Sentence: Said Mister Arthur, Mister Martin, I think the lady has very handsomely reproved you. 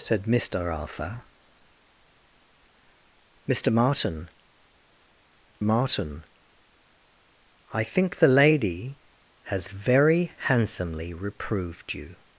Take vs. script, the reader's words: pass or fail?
fail